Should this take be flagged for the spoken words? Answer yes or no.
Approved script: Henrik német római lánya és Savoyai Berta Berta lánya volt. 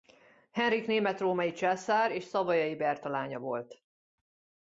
yes